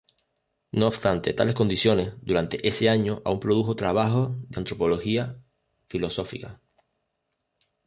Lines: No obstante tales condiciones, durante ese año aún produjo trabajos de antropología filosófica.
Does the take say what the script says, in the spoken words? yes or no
yes